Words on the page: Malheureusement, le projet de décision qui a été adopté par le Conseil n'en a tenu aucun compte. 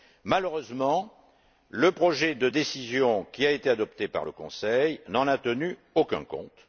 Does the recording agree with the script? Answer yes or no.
yes